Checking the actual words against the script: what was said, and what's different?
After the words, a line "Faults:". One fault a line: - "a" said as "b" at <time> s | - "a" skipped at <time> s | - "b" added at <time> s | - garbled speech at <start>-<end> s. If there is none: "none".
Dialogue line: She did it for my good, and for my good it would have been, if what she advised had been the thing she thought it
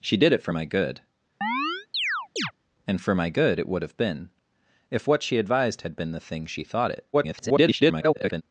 She did it for my good, and for my good it would have been, if what she advised had been the thing she thought it [garbled]
Faults:
- garbled speech at 7.1-8.4 s